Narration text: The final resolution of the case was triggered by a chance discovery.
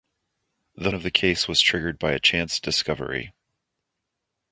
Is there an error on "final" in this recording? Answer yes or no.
yes